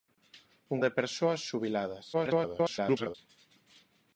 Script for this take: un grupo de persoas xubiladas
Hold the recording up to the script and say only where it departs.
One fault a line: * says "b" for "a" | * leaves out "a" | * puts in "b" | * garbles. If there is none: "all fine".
* leaves out "grupo"
* garbles